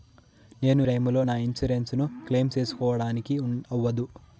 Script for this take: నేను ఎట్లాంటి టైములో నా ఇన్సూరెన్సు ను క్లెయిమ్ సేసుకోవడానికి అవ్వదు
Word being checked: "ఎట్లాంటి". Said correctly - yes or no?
no